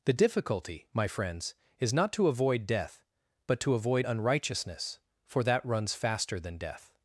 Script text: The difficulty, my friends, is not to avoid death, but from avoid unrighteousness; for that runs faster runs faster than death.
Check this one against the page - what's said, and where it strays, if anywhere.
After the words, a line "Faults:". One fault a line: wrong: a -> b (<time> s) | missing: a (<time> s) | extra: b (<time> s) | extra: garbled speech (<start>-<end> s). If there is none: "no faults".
The difficulty, my friends, is not to avoid death, but to avoid unrighteousness; for that runs faster than death.
Faults:
wrong: from -> to (3.6 s)
missing: runs faster (6.4 s)